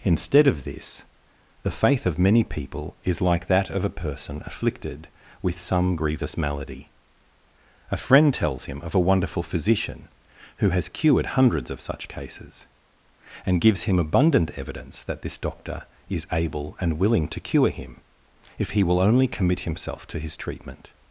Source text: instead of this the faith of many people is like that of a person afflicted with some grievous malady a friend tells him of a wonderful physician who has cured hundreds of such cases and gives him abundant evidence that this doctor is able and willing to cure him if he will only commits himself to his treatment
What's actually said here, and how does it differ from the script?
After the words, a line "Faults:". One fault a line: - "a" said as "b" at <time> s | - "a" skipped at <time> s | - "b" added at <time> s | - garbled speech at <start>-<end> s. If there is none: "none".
instead of this the faith of many people is like that of a person afflicted with some grievous malady a friend tells him of a wonderful physician who has cured hundreds of such cases and gives him abundant evidence that this doctor is able and willing to cure him if he will only commit himself to his treatment
Faults:
- "commits" said as "commit" at 19.3 s